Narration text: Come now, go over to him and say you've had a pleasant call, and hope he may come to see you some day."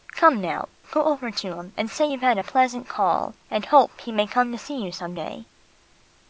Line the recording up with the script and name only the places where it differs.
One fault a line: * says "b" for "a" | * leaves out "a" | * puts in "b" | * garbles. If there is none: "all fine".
all fine